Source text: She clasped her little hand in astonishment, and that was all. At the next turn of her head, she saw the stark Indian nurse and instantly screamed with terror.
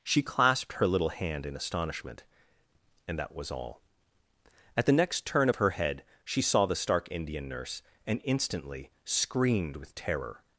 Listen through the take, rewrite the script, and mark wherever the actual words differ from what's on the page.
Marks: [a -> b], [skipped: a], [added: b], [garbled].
She clasped her little hand in astonishment, and that was all. At the next turn of her head, she saw the stark Indian nurse and instantly screamed with terror.